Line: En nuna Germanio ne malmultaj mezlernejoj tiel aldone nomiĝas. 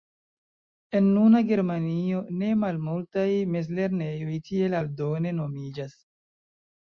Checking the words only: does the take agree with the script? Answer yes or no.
yes